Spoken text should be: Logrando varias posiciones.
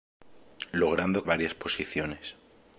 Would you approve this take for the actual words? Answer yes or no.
yes